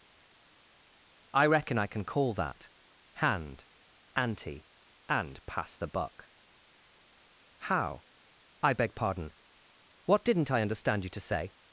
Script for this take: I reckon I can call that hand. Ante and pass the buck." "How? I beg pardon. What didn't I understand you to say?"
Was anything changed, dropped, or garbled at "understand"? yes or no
no